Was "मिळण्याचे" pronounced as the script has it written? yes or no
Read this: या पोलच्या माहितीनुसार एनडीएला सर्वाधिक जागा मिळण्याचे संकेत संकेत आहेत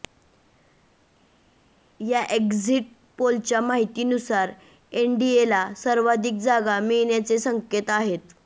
yes